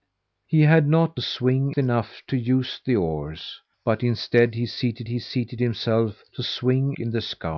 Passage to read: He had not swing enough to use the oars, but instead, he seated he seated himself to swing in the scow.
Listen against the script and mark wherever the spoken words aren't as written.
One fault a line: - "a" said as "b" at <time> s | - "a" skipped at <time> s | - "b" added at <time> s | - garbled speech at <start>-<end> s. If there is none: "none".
none